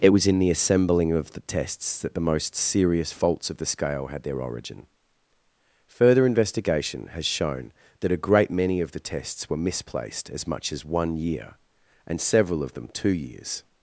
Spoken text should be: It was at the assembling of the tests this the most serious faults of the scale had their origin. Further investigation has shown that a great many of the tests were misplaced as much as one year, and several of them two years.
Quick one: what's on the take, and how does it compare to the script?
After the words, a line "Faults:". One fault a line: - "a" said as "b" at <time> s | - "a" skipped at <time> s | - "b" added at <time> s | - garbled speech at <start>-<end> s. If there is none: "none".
It was in the assembling of the tests that the most serious faults of the scale had their origin. Further investigation has shown that a great many of the tests were misplaced as much as one year, and several of them two years.
Faults:
- "at" said as "in" at 0.2 s
- "this" said as "that" at 2.0 s